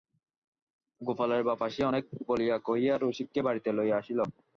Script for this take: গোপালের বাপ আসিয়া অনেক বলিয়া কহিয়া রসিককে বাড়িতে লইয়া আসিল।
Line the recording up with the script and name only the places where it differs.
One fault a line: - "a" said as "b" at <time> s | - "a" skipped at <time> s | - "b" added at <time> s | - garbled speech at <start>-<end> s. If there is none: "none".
none